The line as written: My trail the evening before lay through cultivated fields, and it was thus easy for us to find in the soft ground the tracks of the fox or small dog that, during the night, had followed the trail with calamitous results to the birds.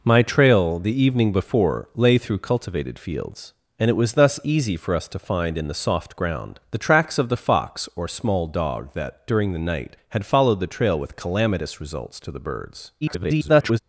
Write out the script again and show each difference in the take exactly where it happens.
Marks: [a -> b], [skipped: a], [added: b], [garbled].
My trail the evening before lay through cultivated fields, and it was thus easy for us to find in the soft ground the tracks of the fox or small dog that, during the night, had followed the trail with calamitous results to the birds. [garbled]